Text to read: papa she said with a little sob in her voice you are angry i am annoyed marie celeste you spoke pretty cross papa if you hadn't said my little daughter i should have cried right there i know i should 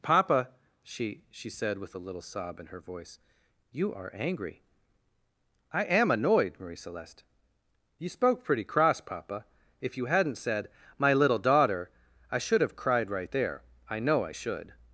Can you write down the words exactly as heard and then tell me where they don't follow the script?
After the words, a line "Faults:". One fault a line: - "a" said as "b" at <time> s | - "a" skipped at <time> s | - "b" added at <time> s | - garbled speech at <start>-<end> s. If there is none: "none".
papa she she said with a little sob in her voice you are angry i am annoyed marie celeste you spoke pretty cross papa if you hadn't said my little daughter i should have cried right there i know i should
Faults:
- "she" added at 1.3 s